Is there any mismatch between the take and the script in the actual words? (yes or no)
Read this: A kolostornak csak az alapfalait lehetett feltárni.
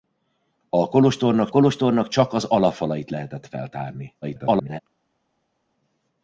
yes